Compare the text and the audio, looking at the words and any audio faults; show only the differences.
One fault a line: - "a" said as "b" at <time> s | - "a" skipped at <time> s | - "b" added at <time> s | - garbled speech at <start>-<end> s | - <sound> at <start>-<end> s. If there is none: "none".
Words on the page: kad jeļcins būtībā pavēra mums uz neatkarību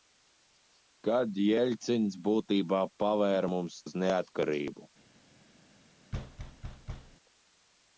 - thud at 6.1-7.2 s